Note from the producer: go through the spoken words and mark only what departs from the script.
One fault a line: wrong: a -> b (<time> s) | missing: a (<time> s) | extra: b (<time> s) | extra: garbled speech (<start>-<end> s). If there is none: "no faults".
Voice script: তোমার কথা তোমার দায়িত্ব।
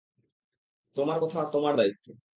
no faults